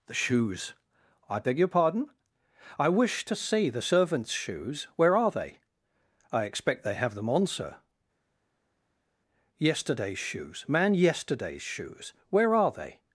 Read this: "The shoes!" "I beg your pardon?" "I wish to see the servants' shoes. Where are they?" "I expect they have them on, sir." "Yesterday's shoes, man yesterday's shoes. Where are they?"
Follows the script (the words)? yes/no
yes